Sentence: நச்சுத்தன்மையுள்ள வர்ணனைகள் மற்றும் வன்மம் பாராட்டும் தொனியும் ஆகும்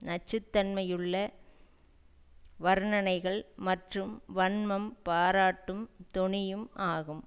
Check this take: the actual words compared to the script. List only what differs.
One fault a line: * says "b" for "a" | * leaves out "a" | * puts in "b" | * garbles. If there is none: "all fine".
all fine